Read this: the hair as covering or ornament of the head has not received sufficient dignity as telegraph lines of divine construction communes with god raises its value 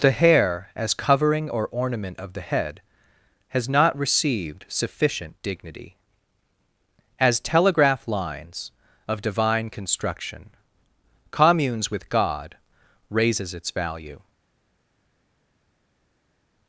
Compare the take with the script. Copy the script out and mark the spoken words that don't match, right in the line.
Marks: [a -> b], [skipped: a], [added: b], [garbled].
the hair as covering or ornament of the head has not received sufficient dignity as telegraph lines of divine construction communes with god raises its value